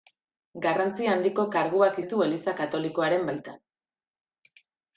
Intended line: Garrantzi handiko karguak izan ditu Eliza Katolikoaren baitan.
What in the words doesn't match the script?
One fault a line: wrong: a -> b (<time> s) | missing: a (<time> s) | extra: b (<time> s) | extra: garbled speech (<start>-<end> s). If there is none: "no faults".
missing: izan (2.0 s)